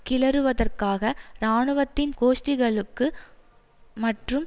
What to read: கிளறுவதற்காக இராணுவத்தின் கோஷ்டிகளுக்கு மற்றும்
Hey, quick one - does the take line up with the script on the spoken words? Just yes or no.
yes